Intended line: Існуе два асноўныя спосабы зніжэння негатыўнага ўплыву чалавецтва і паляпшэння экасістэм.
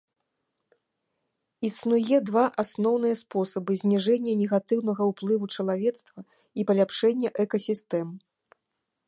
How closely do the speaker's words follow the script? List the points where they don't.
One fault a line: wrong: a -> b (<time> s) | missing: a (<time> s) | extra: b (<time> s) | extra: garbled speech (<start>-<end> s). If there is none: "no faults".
no faults